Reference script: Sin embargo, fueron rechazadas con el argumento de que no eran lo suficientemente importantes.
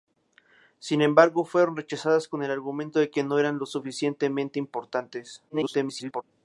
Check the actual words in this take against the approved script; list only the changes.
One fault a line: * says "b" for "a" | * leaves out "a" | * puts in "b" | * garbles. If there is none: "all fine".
* garbles